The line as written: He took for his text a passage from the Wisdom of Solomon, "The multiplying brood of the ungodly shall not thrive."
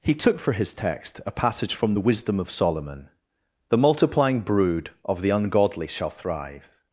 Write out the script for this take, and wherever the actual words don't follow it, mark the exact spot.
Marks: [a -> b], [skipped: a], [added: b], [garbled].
He took for his text a passage from the Wisdom of Solomon, "The multiplying brood of the ungodly shall [skipped: not] thrive."